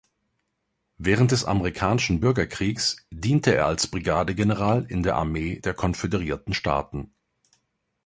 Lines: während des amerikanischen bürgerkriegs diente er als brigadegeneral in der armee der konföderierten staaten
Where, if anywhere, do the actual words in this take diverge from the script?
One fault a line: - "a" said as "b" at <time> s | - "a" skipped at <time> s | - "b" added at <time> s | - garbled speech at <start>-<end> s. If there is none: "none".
none